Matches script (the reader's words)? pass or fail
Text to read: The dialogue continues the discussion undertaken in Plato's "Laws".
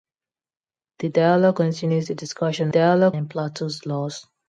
fail